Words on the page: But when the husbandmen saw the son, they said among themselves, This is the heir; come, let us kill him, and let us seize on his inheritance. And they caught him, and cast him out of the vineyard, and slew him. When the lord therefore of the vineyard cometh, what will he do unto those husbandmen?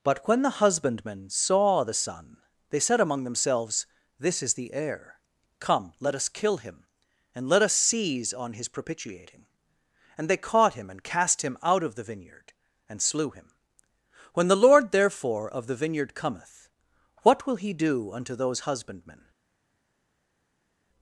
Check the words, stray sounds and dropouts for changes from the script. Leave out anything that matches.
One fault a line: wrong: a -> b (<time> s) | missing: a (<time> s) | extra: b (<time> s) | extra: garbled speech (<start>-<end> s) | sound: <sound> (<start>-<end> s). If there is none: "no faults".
wrong: inheritance -> propitiating (8.7 s)